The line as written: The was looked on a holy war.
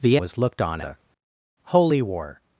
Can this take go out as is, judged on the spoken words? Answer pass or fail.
pass